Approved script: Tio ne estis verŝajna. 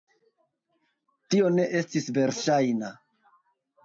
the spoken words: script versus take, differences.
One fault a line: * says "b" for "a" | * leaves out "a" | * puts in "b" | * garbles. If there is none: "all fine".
all fine